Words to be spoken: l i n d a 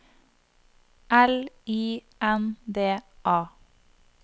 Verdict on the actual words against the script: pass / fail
pass